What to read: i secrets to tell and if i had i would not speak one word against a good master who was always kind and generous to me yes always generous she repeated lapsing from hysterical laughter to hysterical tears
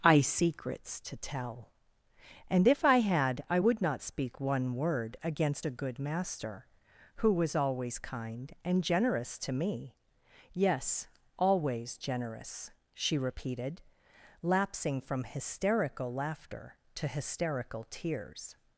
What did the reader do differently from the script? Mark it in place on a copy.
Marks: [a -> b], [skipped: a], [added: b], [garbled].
i secrets to tell and if i had i would not speak one word against a good master who was always kind and generous to me yes always generous she repeated lapsing from hysterical laughter to hysterical tears